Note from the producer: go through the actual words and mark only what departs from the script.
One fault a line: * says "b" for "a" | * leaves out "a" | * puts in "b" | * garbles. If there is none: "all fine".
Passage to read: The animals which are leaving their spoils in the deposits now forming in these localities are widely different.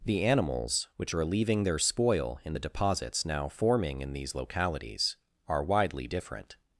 * says "spoil" for "spoils"